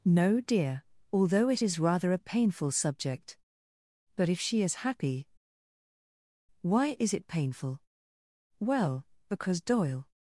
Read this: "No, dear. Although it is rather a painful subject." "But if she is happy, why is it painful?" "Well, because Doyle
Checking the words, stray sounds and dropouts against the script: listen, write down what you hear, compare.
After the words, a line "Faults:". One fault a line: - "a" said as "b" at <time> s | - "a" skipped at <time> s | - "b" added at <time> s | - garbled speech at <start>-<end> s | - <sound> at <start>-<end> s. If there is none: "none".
"No, dear. Although it is rather a painful subject." "But if she is happy, why is it painful?" "Well, because Doyle
Faults:
none